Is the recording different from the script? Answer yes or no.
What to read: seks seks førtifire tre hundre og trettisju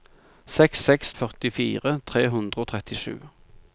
no